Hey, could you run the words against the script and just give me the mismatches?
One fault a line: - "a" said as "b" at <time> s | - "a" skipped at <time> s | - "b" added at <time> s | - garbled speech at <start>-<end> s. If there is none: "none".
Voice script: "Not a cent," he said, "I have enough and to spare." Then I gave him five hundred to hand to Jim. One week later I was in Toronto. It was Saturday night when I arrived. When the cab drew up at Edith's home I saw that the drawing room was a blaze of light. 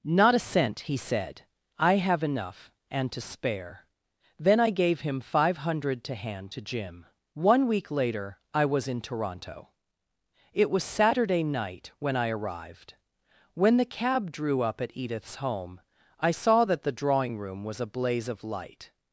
none